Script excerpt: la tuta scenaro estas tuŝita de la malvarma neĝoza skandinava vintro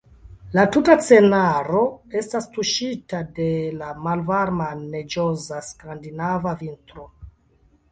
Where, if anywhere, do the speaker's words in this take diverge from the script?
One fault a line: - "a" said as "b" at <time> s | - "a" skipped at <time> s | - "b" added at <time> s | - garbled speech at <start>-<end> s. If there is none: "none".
none